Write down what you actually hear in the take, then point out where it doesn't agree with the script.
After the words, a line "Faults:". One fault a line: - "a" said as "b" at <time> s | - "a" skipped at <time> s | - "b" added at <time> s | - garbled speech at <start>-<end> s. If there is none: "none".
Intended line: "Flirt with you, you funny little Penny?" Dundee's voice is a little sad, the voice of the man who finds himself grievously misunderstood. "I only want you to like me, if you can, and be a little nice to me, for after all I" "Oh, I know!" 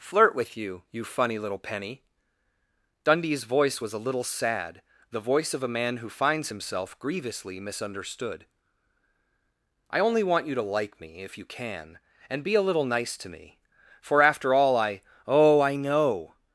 "Flirt with you, you funny little Penny?" Dundee's voice was a little sad, the voice of a man who finds himself grievously misunderstood. "I only want you to like me, if you can, and be a little nice to me, for after all I" "Oh, I know!"
Faults:
- "is" said as "was" at 3.8 s
- "the" said as "a" at 5.6 s